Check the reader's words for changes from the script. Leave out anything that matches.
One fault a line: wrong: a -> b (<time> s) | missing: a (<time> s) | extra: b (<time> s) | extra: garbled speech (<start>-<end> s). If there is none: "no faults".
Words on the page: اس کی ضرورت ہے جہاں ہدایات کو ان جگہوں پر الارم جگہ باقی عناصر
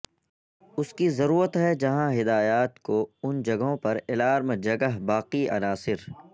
no faults